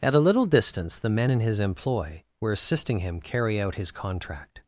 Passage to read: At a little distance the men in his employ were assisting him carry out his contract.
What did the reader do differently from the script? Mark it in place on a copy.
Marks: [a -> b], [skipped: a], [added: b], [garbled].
At a little distance the men in his employ were assisting him carry out his contract.